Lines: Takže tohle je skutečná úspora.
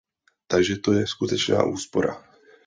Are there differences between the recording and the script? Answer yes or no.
yes